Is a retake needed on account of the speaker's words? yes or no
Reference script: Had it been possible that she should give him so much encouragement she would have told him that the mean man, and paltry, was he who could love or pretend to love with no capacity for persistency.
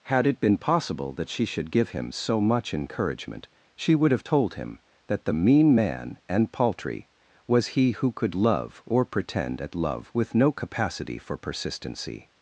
yes